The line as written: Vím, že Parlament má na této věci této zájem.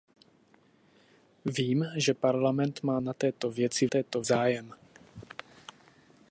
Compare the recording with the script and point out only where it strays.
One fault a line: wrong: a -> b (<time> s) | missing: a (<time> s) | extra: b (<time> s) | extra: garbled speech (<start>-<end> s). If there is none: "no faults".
no faults